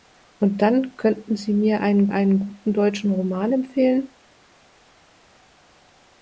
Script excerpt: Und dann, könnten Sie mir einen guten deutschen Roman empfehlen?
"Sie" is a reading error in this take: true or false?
false